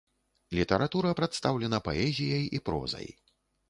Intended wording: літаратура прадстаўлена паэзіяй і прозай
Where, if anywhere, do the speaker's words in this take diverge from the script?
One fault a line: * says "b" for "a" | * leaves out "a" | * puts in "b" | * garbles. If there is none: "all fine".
all fine